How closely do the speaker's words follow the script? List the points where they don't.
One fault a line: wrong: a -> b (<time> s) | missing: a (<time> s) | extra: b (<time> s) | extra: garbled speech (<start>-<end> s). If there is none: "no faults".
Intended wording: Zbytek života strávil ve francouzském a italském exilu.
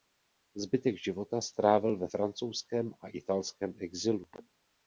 no faults